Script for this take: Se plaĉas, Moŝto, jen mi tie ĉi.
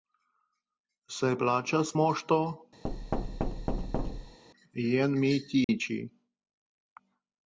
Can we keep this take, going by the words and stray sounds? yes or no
no